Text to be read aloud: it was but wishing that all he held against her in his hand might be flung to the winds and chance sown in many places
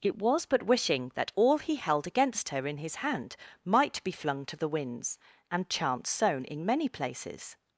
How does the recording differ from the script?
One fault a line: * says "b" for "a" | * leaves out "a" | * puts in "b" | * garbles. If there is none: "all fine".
all fine